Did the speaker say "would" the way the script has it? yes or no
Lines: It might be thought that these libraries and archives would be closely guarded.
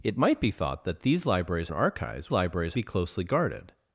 no